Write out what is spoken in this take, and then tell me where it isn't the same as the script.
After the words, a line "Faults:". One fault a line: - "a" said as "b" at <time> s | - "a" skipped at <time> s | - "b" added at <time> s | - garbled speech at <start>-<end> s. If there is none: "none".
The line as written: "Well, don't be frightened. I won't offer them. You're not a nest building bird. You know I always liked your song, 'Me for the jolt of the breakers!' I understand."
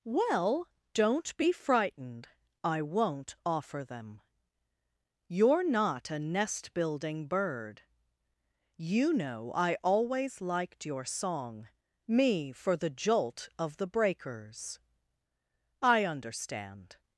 "Well, don't be frightened. I won't offer them. You're not a nest building bird. You know I always liked your song, 'Me for the jolt of the breakers!' I understand."
Faults:
none